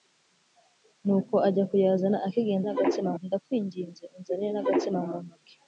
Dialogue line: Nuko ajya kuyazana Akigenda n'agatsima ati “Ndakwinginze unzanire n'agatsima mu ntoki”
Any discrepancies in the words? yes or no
no